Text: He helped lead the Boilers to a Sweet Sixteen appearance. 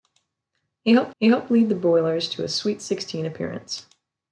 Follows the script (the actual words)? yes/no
no